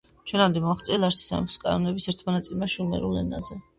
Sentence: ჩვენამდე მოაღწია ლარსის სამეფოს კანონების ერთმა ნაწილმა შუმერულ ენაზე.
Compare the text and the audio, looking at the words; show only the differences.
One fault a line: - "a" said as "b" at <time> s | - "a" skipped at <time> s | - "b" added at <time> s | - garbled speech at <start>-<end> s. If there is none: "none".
none